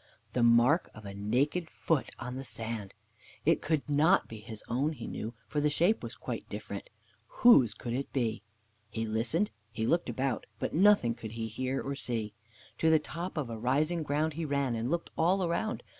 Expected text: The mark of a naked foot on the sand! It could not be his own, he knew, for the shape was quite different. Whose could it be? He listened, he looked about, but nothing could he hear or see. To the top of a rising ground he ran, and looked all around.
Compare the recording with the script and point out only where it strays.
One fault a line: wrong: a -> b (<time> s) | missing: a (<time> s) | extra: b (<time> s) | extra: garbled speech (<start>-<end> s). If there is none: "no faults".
no faults